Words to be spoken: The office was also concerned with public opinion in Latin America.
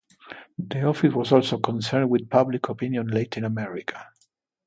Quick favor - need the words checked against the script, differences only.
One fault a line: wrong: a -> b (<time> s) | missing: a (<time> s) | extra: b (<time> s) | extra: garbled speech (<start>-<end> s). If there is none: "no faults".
no faults